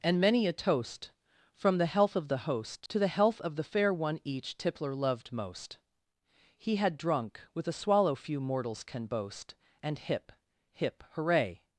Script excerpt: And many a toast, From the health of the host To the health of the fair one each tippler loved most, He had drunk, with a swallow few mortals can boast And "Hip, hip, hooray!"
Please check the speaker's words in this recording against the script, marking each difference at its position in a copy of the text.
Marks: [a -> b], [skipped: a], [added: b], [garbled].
And many a toast, From the health of the host To the health of the fair one each tippler loved most, He had drunk, with a swallow few mortals can boast And "Hip, hip, hooray!"